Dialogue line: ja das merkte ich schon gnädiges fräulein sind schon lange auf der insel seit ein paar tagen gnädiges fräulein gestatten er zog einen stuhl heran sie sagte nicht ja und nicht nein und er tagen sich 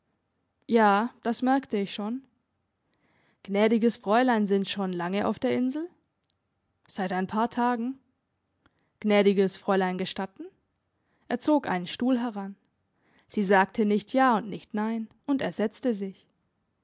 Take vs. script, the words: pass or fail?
fail